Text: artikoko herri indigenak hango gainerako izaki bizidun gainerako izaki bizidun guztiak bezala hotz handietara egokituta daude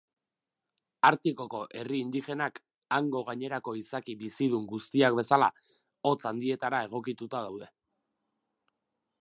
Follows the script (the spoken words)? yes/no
no